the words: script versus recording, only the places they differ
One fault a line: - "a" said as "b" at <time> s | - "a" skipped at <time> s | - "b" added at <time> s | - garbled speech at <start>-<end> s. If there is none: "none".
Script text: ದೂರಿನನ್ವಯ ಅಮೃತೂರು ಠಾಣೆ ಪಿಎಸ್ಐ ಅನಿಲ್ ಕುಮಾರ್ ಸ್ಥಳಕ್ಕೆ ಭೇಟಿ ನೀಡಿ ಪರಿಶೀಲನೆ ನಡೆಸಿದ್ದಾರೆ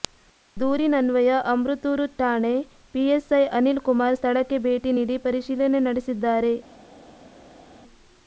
none